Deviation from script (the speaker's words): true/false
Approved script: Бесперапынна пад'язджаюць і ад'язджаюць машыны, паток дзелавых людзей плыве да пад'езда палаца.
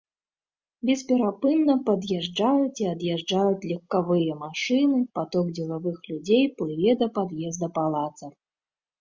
true